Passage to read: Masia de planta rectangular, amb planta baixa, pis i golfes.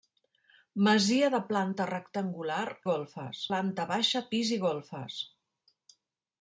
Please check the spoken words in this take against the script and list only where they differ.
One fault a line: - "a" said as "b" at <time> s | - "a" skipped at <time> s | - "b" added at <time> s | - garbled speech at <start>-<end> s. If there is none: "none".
- "amb" said as "golfes" at 2.9 s